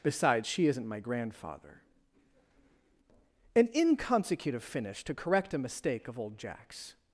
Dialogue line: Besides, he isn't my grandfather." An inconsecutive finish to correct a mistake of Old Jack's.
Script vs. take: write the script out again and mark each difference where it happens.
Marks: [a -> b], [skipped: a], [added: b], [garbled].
Besides, [he -> she] isn't my grandfather." An inconsecutive finish to correct a mistake of Old Jack's.